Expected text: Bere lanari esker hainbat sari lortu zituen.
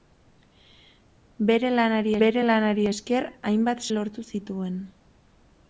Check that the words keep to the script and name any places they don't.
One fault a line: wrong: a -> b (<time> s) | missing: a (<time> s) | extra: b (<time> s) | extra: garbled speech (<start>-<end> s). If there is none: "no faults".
extra: bere lanari (2.2 s)
missing: sari (3.8 s)